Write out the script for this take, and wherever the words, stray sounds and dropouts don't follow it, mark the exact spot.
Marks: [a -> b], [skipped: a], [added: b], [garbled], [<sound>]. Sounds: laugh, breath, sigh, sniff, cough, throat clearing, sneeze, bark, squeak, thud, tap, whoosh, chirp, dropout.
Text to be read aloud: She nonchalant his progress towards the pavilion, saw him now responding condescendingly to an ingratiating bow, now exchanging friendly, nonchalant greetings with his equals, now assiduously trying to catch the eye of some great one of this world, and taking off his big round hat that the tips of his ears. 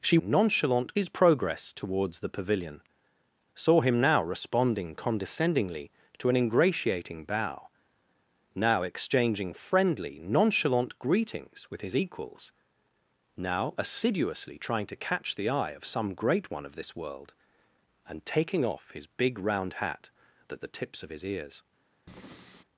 She nonchalant his progress towards the pavilion, saw him now responding condescendingly to an ingratiating bow, now exchanging friendly, nonchalant greetings with his equals, now assiduously trying to catch the eye of some great one of this world, and taking off his big round hat that the tips of his ears. [breath]